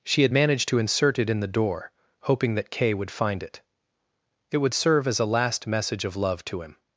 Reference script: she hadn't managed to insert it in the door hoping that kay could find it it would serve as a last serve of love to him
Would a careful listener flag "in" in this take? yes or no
no